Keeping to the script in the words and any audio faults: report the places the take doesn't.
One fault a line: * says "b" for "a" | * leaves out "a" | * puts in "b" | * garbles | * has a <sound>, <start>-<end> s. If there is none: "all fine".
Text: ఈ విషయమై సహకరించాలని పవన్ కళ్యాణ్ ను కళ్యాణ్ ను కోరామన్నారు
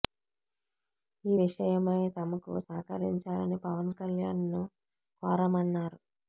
* puts in "తమకు"
* leaves out "కళ్యాణ్ ను"